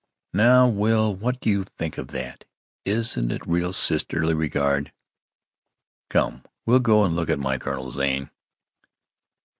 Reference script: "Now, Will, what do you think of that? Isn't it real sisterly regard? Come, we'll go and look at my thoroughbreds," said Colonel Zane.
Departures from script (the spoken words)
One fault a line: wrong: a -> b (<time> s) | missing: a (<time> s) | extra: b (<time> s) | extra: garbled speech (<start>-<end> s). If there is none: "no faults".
missing: thoroughbreds said (7.6 s)